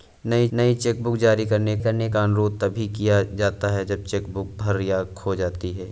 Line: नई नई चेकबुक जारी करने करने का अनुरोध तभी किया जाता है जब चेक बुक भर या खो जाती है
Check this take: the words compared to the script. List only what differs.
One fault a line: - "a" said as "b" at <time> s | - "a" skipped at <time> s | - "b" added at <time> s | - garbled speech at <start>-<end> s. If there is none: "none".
none